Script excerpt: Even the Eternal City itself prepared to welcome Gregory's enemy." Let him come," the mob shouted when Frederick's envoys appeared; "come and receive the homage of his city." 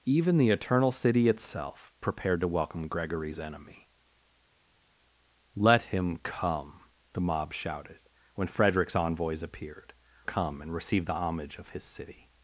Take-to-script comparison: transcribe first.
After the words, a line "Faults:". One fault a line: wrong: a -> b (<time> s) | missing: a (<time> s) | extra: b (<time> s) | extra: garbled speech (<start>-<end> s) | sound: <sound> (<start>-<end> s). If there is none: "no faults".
Even the Eternal City itself prepared to welcome Gregory's enemy." Let him come," the mob shouted when Frederick's envoys appeared; "come and receive the homage of his city."
Faults:
no faults